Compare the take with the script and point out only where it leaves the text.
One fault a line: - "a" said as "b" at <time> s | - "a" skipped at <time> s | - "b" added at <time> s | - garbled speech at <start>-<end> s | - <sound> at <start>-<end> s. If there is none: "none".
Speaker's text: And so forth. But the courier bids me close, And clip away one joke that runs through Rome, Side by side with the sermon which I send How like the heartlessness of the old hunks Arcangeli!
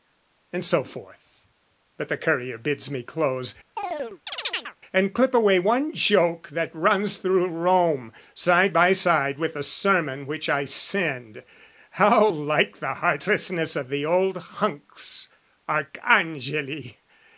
- chirp at 3.8-4.8 s